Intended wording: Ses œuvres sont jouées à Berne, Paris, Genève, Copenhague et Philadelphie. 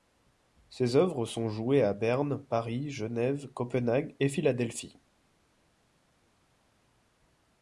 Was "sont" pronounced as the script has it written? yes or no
yes